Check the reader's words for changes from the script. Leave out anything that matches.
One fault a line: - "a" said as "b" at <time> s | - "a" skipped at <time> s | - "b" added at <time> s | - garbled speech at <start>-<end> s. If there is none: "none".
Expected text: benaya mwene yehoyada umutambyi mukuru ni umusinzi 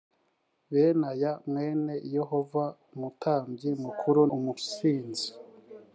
- "ni" skipped at 4.2 s